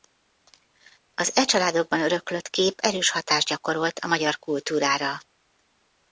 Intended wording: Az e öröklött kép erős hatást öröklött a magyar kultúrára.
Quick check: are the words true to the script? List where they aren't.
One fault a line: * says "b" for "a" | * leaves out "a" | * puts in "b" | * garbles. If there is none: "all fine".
* puts in "családokban"
* says "gyakorolt" for "öröklött"